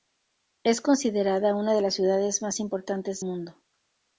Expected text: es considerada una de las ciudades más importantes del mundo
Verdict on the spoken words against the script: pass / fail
fail